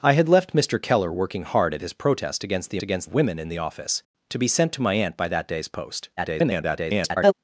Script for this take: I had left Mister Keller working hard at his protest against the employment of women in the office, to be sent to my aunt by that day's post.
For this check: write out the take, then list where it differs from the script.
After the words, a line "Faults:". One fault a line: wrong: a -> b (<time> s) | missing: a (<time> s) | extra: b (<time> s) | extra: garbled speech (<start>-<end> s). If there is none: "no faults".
I had left Mister Keller working hard at his protest against the against of women in the office, to be sent to my aunt by that day's post. [garbled]
Faults:
wrong: employment -> against (2.8 s)
extra: garbled speech (6.2-7.3 s)